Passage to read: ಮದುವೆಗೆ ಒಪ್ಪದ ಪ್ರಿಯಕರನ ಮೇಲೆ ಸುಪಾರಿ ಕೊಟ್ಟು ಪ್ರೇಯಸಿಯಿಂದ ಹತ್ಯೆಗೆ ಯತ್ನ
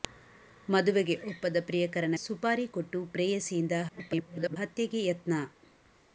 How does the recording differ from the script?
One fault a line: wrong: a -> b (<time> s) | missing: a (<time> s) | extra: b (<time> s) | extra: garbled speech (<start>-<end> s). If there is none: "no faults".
missing: ಮೇಲೆ (2.1 s)
extra: garbled speech (3.9-4.6 s)